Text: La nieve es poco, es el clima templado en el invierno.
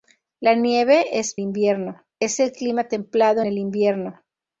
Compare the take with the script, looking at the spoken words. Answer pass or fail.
fail